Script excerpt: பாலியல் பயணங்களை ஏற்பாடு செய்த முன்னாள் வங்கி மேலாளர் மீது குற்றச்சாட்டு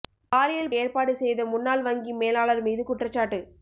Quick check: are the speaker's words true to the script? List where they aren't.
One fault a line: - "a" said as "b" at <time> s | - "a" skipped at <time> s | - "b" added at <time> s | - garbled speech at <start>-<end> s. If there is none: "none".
- "பயணங்களை" skipped at 0.7 s